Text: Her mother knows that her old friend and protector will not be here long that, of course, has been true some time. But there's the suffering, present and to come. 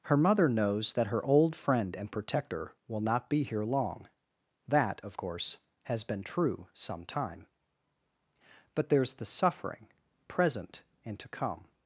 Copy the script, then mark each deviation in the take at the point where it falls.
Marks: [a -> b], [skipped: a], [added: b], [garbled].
Her mother knows that her old friend and protector will not be here long that, of course, has been true some time. But there's the suffering, present and to come.